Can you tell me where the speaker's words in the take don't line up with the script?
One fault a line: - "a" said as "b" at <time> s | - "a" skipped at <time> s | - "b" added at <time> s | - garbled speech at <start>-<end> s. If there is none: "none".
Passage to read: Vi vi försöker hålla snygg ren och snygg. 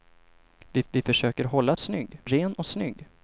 none